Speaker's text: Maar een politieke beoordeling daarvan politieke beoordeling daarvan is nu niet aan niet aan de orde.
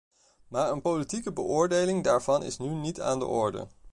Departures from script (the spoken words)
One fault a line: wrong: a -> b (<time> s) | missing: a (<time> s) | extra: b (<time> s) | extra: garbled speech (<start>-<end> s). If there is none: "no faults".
missing: politieke beoordeling daarvan (2.4 s)
missing: niet aan (3.2 s)